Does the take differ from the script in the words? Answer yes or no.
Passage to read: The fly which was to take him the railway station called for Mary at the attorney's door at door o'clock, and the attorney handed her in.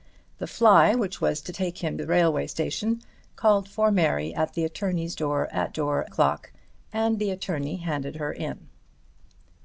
no